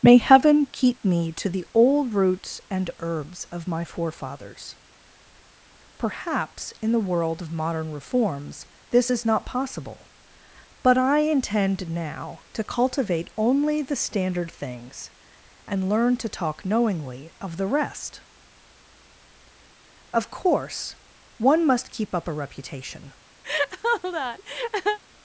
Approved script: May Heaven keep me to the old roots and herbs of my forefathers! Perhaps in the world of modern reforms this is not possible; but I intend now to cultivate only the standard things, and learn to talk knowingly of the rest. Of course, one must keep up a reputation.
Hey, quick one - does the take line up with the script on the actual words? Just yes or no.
yes